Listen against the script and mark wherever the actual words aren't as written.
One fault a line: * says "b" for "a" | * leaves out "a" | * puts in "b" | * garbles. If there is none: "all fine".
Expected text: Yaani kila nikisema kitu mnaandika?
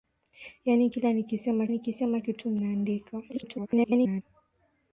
* puts in "nikisema"
* garbles